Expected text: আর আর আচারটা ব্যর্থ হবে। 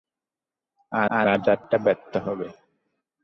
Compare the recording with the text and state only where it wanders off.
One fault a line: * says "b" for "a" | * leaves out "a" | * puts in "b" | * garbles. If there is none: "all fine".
all fine